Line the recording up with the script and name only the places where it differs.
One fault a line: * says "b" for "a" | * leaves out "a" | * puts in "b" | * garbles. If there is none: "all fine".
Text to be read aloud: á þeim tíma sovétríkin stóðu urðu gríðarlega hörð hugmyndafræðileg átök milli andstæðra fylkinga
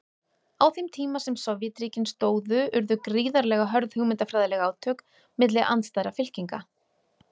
* puts in "sem"